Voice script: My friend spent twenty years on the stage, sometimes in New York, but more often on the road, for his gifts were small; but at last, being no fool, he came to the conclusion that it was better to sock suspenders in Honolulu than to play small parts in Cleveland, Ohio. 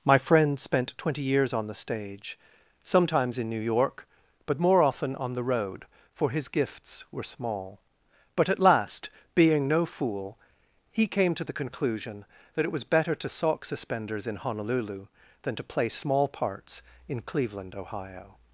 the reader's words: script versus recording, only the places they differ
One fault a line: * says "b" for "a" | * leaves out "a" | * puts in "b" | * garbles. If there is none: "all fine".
all fine